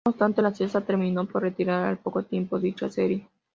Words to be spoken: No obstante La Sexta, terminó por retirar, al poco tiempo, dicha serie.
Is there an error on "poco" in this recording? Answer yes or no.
no